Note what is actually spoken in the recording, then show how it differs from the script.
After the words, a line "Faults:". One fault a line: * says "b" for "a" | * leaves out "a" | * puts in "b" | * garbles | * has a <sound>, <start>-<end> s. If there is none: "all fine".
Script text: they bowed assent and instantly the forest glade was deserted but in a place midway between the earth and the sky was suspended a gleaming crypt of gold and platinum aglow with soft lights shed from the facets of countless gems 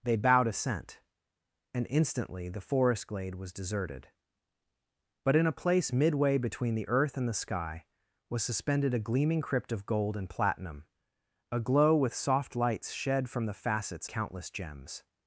they bowed assent and instantly the forest glade was deserted but in a place midway between the earth and the sky was suspended a gleaming crypt of gold and platinum aglow with soft lights shed from the facets countless gems
Faults:
* leaves out "of"